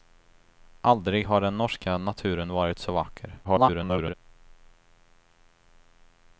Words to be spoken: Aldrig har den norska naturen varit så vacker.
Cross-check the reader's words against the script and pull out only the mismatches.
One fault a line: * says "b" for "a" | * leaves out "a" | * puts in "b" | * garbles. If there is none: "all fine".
* garbles